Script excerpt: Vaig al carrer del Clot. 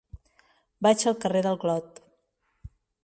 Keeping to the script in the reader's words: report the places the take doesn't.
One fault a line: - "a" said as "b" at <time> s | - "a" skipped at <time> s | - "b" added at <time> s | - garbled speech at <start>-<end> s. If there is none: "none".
none